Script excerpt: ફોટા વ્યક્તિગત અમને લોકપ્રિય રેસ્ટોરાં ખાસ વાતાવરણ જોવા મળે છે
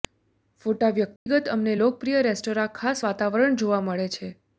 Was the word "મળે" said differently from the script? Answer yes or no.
no